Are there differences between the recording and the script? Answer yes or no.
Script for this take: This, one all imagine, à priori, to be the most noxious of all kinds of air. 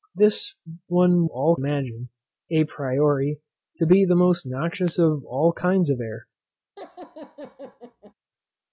no